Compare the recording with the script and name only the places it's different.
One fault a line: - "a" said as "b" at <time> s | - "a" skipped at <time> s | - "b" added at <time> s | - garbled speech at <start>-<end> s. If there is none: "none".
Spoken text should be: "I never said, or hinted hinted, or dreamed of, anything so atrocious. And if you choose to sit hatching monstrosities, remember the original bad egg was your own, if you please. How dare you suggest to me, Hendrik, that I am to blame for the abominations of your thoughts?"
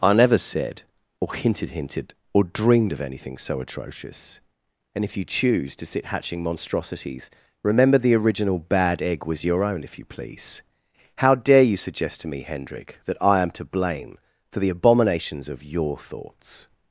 none